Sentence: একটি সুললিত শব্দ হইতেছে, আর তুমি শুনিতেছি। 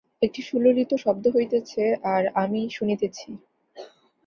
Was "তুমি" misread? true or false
true